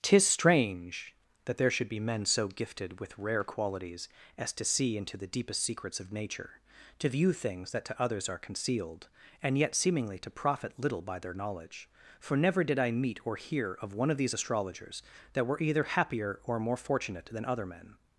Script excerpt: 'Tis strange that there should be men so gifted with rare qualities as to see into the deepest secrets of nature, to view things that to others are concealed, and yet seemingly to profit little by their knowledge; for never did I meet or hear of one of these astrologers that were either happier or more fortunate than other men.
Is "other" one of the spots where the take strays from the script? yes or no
no